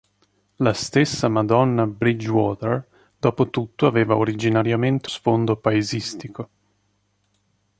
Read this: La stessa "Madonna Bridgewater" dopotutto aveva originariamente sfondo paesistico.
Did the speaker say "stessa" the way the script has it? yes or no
yes